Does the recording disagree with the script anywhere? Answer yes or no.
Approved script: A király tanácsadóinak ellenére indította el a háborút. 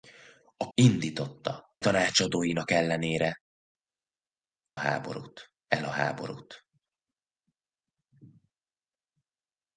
yes